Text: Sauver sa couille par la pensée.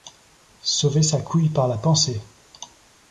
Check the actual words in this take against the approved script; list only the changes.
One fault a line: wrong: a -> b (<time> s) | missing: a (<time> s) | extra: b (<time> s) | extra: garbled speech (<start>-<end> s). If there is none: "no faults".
no faults